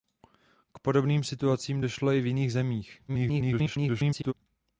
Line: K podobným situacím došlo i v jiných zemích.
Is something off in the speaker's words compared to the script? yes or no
yes